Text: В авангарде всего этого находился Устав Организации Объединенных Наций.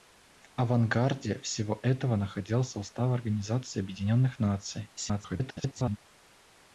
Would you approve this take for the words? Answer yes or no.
no